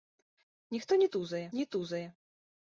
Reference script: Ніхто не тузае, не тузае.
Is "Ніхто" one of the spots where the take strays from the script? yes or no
no